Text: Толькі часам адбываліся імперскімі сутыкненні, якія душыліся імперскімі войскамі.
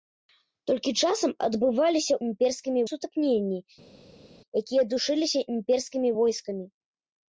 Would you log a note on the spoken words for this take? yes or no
no